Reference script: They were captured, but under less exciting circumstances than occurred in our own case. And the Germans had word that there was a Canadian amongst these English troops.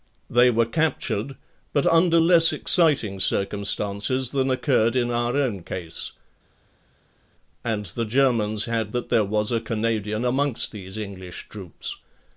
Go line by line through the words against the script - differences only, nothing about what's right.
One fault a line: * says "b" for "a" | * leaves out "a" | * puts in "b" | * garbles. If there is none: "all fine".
* leaves out "word"